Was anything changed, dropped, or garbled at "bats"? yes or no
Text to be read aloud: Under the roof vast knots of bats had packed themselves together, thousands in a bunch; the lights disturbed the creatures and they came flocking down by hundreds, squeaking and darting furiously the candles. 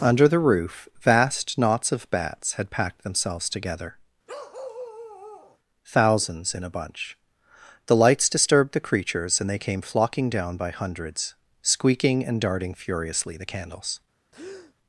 no